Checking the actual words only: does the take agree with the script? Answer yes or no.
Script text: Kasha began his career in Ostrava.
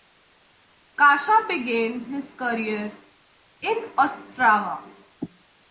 yes